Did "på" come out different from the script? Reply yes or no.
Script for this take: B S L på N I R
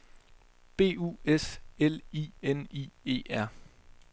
yes